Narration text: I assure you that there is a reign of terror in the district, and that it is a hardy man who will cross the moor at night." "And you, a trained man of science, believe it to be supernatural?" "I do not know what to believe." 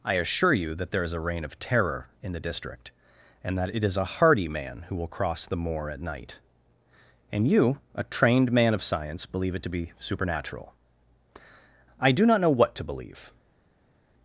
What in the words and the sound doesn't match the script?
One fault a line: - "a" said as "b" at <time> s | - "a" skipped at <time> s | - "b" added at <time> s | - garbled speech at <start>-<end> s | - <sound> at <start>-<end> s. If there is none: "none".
none